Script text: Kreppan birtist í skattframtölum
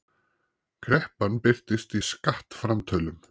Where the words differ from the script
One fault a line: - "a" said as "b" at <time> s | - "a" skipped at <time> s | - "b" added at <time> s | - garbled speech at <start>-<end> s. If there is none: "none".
none